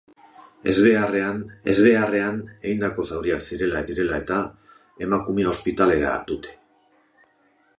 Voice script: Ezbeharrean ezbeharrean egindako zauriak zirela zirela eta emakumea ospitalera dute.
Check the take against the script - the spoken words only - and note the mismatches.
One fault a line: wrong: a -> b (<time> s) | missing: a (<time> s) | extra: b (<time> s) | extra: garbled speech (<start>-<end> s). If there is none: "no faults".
no faults